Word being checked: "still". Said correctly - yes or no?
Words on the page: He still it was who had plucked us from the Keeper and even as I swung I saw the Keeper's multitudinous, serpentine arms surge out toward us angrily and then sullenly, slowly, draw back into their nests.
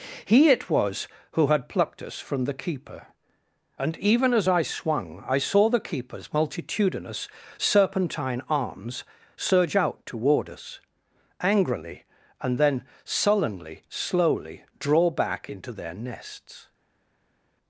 no